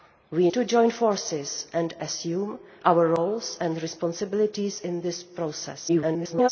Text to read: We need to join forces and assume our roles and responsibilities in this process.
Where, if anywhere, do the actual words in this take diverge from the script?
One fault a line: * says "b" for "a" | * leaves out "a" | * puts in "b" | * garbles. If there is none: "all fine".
* leaves out "need"
* garbles